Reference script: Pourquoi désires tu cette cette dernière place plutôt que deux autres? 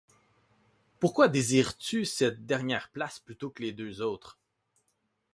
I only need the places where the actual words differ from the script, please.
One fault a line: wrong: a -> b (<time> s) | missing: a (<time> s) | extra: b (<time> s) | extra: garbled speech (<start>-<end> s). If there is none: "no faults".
missing: cette (2.5 s)
extra: les (3.6 s)